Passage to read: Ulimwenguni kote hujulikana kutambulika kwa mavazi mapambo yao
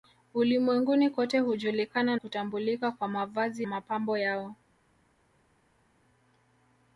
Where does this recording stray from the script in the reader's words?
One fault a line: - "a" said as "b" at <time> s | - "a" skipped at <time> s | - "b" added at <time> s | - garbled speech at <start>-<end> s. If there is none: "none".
none